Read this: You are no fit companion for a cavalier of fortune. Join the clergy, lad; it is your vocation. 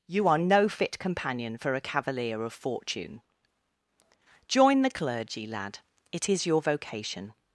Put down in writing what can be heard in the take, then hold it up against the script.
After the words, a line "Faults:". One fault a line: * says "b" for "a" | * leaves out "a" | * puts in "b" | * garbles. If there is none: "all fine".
You are no fit companion for a cavalier of fortune. Join the clergy, lad; it is your vocation.
Faults:
all fine